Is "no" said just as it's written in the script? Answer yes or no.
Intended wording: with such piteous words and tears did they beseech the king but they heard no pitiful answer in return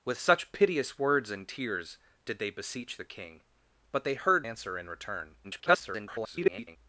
no